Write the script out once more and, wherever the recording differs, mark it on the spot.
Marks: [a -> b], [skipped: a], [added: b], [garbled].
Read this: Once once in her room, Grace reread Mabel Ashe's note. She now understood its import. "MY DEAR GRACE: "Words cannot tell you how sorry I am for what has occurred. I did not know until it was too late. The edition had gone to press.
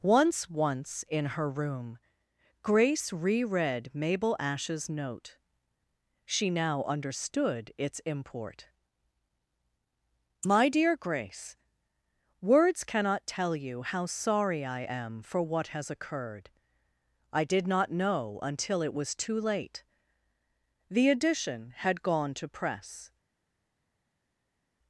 Once once in her room, Grace reread Mabel Ashe's note. She now understood its import. "MY DEAR GRACE: "Words cannot tell you how sorry I am for what has occurred. I did not know until it was too late. The edition had gone to press.